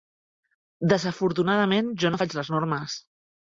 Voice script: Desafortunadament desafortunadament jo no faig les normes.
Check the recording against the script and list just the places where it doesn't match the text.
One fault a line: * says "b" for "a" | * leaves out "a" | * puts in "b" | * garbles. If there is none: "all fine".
* leaves out "desafortunadament"